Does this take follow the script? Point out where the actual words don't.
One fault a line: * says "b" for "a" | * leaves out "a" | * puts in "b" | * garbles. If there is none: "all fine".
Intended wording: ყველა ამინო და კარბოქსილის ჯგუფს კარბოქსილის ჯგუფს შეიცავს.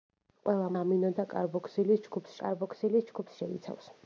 all fine